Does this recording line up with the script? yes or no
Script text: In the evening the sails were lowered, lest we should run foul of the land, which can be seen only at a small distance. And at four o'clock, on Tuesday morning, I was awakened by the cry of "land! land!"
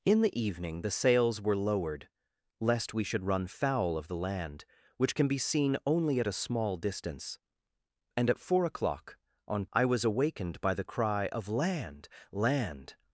no